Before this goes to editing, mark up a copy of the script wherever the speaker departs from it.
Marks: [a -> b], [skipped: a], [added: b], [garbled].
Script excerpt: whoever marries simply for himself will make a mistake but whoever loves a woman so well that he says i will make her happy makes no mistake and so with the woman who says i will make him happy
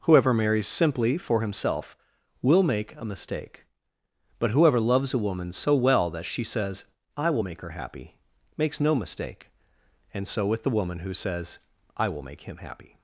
whoever marries simply for himself will make a mistake but whoever loves a woman so well that [he -> she] says i will make her happy makes no mistake and so with the woman who says i will make him happy